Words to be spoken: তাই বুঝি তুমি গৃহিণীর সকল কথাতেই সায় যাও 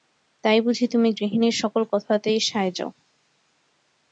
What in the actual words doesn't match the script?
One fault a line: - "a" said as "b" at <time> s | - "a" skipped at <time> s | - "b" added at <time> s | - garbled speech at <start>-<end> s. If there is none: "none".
none